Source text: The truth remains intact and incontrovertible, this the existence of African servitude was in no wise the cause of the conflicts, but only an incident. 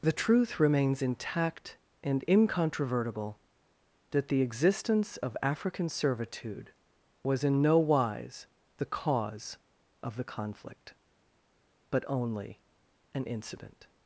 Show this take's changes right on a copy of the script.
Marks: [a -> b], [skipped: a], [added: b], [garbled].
The truth remains intact and incontrovertible, [this -> that] the existence of African servitude was in no wise the cause of the [conflicts, -> conflict] but only an incident.